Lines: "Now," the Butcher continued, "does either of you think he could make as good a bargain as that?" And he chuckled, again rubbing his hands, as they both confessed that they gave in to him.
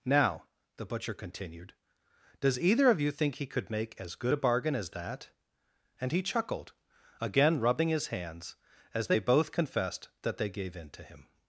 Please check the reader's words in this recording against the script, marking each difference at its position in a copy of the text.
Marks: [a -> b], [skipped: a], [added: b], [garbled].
"Now," the Butcher continued, "does either of you think he could make as good a bargain as that?" And he chuckled, again rubbing his hands, as they both confessed that they gave in to him.